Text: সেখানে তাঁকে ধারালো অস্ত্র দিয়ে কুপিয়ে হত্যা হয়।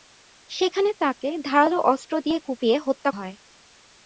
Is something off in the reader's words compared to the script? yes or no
no